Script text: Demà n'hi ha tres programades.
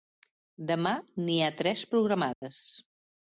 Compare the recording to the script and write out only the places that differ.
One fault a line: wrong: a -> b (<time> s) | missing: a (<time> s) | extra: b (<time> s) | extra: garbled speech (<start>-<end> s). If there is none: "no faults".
no faults